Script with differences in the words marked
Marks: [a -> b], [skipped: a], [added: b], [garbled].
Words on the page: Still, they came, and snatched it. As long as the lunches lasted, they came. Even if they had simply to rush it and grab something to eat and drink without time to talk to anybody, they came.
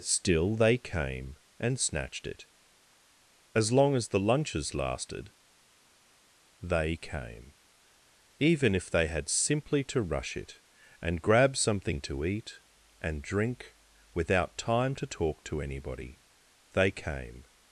Still, they came, and snatched it. As long as the lunches lasted, they came. Even if they had simply to rush it and grab something to eat and drink without time to talk to anybody, they came.